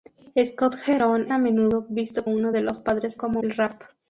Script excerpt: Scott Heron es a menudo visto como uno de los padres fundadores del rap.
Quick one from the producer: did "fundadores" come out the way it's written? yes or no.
no